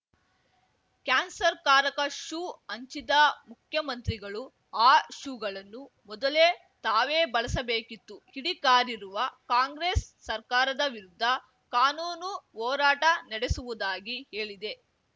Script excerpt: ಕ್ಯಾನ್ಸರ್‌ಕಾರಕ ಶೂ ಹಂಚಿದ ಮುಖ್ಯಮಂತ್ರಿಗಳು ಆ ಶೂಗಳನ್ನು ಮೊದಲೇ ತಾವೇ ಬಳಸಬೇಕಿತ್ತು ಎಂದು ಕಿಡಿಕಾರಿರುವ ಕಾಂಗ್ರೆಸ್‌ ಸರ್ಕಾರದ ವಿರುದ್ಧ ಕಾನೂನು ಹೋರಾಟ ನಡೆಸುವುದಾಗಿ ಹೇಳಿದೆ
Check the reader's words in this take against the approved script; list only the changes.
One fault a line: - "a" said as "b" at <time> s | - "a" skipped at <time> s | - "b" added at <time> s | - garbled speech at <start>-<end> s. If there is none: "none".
- "ಎಂದು" skipped at 8.2 s